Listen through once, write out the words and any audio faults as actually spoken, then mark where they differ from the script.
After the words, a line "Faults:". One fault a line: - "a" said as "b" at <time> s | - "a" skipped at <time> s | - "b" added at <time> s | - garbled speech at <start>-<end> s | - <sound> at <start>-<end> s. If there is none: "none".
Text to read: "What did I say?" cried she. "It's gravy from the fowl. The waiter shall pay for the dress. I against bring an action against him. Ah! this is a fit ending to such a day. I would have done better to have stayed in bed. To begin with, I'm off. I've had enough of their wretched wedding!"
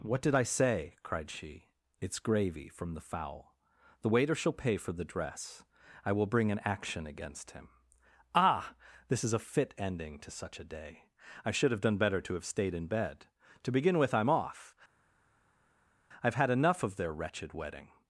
"What did I say?" cried she. "It's gravy from the fowl. The waiter shall pay for the dress. I will bring an action against him. Ah! this is a fit ending to such a day. I should have done better to have stayed in bed. To begin with, I'm off. I've had enough of their wretched wedding!"
Faults:
- "against" said as "will" at 6.1 s
- "would" said as "should" at 11.5 s